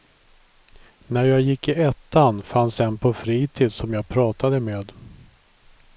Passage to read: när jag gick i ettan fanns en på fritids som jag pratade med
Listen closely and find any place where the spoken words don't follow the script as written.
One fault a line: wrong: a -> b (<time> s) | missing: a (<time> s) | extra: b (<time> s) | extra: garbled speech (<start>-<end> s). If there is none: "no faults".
no faults